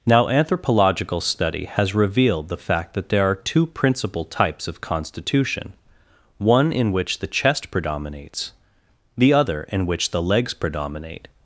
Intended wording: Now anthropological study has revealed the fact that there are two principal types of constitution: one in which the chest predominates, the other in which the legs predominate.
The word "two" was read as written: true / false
true